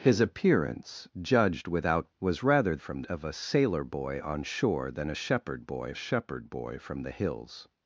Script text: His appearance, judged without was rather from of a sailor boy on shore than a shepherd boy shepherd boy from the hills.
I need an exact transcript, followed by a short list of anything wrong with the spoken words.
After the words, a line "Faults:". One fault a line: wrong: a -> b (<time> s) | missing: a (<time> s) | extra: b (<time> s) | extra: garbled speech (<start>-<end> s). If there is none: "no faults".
His appearance, judged without was rather from of a sailor boy on shore than a shepherd boy shepherd boy from the hills.
Faults:
no faults